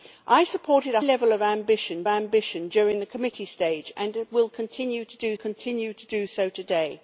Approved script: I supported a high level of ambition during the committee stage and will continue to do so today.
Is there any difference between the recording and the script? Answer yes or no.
yes